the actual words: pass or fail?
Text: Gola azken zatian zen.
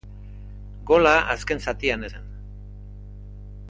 pass